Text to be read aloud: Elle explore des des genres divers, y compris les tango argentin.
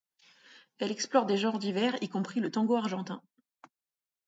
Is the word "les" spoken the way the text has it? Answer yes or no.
no